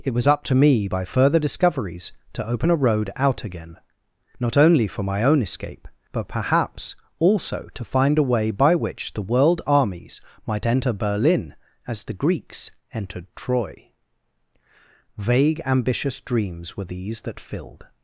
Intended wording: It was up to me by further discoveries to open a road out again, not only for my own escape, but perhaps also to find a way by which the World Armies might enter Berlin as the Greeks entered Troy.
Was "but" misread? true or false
false